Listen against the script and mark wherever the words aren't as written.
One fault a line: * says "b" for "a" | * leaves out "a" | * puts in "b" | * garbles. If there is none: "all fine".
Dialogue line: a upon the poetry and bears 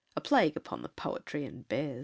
* puts in "plague"